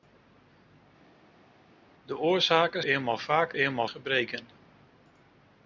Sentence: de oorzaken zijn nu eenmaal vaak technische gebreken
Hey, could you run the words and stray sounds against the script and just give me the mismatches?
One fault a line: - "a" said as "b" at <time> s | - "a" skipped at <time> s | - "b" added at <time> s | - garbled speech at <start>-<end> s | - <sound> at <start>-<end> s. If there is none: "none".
- "zijn nu" skipped at 2.8 s
- "technische" said as "eenmaal" at 3.5 s